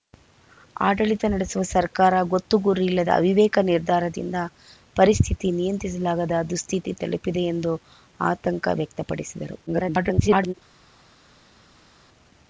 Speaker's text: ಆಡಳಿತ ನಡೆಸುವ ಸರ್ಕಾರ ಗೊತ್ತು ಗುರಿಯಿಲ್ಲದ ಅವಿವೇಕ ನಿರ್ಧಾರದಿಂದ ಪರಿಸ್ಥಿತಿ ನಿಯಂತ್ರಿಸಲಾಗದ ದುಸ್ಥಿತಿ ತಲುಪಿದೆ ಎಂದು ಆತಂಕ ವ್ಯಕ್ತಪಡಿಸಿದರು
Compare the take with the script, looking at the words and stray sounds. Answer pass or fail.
fail